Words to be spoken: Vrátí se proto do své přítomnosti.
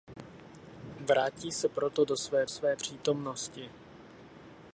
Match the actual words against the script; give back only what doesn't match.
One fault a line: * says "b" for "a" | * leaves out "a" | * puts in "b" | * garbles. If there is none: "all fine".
* puts in "své"